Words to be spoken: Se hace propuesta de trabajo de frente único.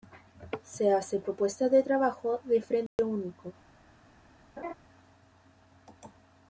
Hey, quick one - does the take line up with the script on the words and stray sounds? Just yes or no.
no